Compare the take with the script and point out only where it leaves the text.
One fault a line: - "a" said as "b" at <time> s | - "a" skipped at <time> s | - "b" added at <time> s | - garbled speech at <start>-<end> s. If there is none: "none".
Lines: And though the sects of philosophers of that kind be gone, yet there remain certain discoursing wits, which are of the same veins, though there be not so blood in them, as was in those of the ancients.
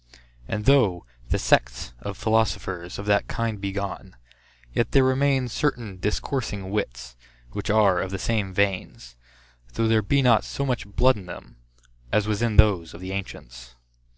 - "much" added at 10.6 s